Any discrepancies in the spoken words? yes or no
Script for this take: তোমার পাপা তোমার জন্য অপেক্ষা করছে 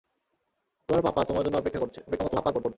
yes